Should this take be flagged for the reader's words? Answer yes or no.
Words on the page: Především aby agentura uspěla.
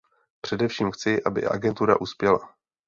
yes